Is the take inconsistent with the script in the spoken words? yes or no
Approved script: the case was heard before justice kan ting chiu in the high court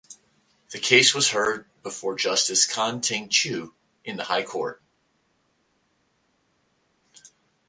no